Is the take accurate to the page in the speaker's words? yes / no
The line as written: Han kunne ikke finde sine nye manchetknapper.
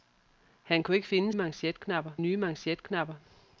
no